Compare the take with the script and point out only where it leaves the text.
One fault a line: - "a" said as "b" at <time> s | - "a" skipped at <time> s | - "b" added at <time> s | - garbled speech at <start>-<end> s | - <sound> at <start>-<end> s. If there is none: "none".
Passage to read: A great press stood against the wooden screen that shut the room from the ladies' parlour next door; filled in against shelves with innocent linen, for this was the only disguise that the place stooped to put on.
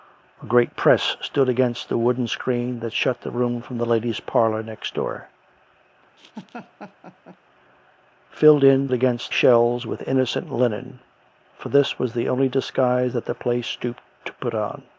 - laugh at 6.2-7.4 s